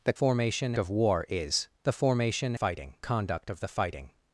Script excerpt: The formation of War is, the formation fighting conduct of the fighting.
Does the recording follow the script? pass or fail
pass